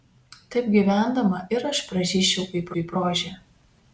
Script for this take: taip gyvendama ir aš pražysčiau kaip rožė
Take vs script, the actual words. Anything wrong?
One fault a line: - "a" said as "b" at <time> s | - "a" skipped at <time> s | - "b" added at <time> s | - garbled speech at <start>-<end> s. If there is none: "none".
- "kaip" added at 2.8 s